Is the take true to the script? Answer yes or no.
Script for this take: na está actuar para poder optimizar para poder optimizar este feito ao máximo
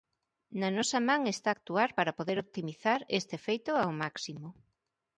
no